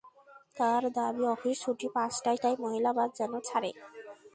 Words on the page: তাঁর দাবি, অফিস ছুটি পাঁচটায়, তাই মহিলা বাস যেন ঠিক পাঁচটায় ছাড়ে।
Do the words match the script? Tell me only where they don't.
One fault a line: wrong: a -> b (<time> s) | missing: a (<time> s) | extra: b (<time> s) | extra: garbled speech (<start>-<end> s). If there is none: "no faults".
missing: ঠিক পাঁচটায় (3.3 s)